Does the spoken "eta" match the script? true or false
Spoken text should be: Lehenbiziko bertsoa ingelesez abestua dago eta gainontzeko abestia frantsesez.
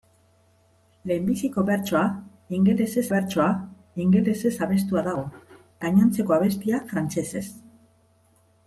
false